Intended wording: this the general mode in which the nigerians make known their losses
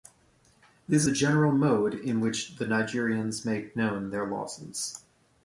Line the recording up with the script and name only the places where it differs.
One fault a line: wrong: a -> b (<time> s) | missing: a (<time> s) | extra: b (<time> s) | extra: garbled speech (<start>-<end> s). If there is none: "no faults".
no faults